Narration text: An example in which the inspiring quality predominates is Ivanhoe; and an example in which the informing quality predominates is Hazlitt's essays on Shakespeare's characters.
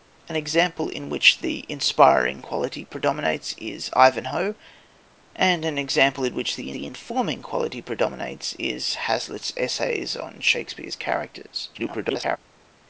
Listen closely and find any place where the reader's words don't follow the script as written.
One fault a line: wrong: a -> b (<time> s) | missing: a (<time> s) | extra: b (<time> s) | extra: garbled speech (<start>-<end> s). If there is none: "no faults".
extra: the (6.7 s)
extra: garbled speech (11.7-12.4 s)